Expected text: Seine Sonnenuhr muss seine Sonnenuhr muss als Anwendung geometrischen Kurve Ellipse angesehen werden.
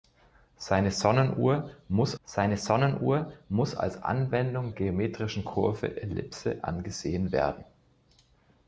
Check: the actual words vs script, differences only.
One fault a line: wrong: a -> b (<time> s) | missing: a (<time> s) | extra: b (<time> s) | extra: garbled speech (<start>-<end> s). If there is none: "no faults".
no faults